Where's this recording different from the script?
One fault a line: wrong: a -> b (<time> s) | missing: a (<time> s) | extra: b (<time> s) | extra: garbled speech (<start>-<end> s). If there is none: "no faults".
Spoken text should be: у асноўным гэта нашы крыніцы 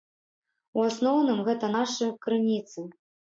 no faults